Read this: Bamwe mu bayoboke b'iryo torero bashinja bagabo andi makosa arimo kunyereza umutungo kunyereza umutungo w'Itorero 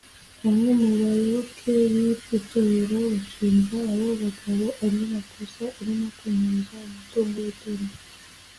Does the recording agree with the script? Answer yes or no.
no